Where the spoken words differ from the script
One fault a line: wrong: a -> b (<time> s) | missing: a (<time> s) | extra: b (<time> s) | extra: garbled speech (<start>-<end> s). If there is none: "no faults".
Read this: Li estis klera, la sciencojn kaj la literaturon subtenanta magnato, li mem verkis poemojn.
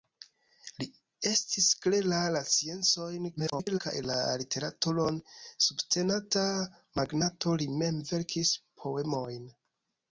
extra: garbled speech (3.4-3.8 s)